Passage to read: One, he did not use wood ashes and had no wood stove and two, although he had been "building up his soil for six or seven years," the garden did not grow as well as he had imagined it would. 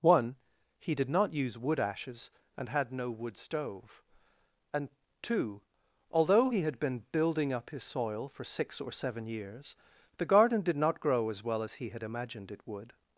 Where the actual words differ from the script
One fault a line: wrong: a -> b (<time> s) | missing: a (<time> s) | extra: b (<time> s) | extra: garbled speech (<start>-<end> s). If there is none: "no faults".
no faults